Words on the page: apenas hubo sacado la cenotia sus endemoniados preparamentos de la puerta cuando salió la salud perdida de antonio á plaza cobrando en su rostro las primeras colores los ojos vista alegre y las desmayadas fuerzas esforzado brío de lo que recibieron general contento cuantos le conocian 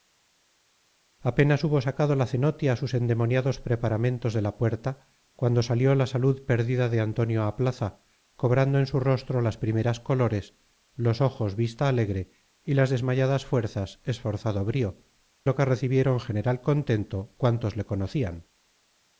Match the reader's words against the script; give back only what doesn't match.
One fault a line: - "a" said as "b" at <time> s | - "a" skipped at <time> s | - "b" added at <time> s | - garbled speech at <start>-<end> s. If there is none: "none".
- "de" skipped at 15.0 s